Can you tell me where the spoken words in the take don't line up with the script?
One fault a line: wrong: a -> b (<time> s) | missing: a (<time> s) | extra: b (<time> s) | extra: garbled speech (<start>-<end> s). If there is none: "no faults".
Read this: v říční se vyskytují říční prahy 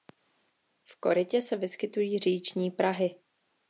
wrong: říční -> korytě (1.0 s)